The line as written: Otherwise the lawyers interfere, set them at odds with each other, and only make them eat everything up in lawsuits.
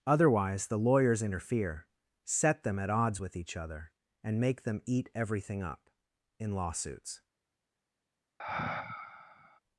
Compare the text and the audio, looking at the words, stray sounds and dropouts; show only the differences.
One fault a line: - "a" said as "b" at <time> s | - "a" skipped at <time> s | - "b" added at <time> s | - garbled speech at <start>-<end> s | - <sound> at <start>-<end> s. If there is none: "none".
- "only" skipped at 4.4 s
- sigh at 8.4-9.6 s